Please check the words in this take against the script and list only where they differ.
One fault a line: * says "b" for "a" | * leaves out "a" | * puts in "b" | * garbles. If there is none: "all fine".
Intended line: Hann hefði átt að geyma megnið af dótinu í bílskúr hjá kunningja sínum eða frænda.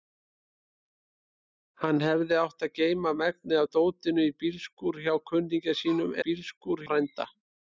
* says "bílskúr" for "eða"